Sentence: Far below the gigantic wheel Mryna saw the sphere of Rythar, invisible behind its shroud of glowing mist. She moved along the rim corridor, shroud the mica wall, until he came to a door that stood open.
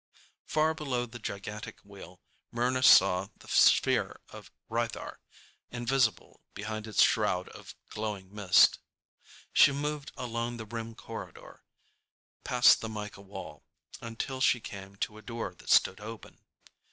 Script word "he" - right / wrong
wrong